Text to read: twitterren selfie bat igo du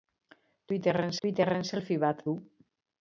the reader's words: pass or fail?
fail